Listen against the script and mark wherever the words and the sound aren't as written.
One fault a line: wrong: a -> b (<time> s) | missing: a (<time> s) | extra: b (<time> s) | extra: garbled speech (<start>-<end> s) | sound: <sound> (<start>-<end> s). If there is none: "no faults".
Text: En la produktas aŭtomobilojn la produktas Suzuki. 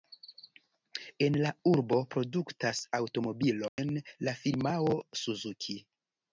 extra: urbo (1.7 s)
sound: dropout (3.7-3.8 s)
wrong: produktas -> firmao (4.4 s)